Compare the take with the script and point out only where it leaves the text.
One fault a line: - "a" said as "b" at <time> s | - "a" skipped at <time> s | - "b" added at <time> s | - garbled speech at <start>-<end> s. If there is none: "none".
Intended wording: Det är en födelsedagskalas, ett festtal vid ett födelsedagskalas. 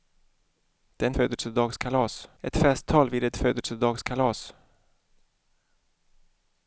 none